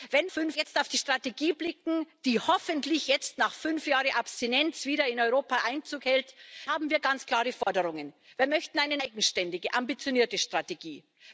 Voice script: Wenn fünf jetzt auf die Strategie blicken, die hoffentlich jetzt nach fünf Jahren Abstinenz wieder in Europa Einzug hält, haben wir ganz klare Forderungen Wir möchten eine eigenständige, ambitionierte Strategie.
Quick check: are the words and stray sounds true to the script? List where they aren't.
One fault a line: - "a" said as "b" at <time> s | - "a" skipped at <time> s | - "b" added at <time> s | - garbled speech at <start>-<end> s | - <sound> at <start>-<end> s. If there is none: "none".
- dropout at 7.6-7.7 s